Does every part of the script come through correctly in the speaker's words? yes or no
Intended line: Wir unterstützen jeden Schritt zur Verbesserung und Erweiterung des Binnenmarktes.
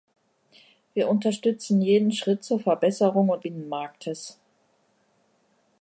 no